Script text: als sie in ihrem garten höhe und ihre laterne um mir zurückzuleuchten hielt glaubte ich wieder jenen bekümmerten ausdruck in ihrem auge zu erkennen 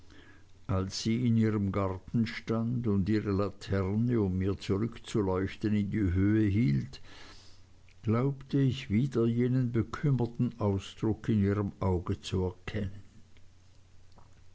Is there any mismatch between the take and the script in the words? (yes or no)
yes